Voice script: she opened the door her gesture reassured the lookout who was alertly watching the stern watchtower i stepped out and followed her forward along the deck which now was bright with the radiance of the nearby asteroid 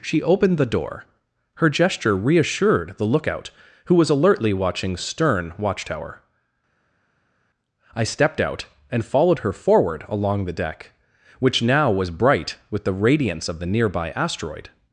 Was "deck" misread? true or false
false